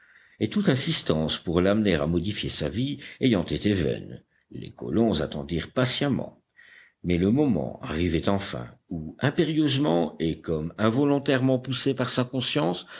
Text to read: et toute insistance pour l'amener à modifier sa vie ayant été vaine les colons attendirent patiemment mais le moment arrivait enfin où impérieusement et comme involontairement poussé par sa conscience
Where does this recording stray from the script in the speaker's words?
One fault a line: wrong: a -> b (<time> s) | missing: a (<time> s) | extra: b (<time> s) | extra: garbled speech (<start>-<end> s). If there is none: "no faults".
no faults